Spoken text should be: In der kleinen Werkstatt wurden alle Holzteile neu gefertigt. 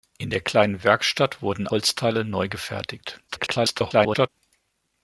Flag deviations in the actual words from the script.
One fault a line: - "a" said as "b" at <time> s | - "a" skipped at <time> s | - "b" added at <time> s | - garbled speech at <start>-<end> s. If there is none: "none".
- "alle" skipped at 1.7 s
- garbled speech at 3.3-4.3 s